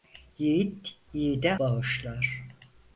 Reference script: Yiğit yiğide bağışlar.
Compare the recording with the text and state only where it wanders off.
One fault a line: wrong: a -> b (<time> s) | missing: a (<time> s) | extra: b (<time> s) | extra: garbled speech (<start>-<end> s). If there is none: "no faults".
no faults